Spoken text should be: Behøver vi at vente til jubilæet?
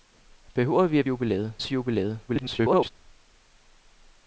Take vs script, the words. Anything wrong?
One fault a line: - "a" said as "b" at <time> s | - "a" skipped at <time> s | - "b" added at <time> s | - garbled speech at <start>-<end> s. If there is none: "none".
- "vente" said as "jubilæet" at 1.1 s
- garbled speech at 2.3-2.9 s